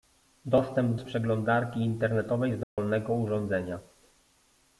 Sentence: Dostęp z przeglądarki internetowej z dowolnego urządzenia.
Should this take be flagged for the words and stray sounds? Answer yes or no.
yes